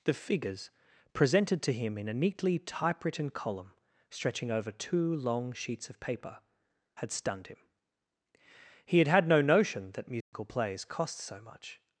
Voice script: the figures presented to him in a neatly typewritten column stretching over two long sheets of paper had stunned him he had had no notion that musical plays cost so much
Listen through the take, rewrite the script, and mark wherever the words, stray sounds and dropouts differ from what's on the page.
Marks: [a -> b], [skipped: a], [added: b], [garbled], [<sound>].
the figures presented to him in a neatly typewritten column stretching over two long sheets of paper had stunned him he had had no notion that musical [dropout] plays cost so much